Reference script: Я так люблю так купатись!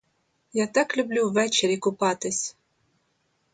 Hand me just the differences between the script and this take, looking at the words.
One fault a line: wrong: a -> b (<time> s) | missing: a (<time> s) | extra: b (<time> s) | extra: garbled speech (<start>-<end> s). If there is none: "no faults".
wrong: так -> ввечері (1.3 s)